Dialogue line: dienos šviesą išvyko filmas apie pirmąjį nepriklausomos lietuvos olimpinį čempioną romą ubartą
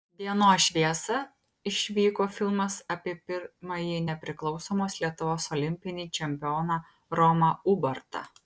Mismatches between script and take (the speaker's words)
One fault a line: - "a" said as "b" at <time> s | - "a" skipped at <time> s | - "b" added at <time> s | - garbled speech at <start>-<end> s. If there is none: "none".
none